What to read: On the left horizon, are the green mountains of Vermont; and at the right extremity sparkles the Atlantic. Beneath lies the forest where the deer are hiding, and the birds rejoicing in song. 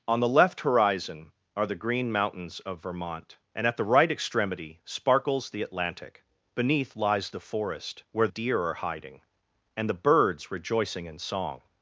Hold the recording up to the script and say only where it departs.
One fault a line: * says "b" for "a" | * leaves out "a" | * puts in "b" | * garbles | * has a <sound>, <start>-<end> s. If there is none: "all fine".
* leaves out "the"